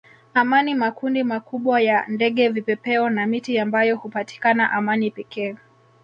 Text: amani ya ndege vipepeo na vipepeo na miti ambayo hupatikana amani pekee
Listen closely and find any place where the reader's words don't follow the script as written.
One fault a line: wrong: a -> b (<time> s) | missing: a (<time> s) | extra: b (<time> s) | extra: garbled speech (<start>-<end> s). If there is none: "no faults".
extra: makundi makubwa (0.8 s)
missing: vipepeo na (3.3 s)